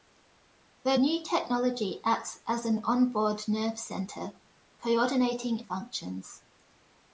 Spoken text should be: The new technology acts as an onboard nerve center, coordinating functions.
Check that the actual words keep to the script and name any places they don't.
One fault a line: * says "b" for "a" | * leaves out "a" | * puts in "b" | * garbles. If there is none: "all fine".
all fine